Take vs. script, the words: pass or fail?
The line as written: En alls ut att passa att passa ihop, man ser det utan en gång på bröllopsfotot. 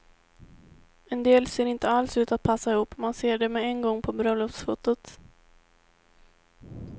fail